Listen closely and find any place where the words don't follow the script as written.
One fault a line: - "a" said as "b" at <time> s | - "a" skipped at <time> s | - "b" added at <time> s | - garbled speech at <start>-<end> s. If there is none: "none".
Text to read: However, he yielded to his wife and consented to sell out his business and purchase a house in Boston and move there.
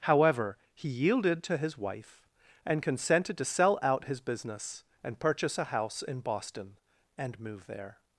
none